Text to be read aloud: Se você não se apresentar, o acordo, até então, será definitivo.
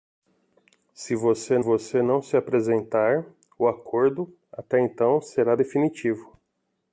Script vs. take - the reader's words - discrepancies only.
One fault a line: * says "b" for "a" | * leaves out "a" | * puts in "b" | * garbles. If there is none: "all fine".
* puts in "você"